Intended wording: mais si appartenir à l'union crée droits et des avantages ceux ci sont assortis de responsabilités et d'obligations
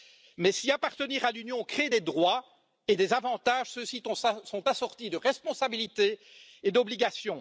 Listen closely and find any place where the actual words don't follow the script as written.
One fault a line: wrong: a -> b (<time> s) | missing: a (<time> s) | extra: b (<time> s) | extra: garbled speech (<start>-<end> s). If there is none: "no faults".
extra: des (1.9 s)